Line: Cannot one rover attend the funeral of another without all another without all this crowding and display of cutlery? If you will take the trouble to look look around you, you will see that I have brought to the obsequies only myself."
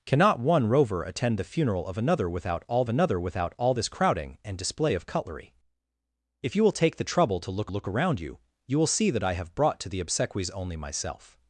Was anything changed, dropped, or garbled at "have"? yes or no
no